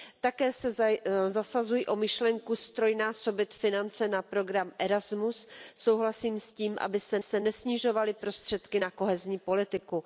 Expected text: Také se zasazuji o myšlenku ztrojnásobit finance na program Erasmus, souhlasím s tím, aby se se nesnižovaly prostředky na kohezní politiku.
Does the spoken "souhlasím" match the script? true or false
true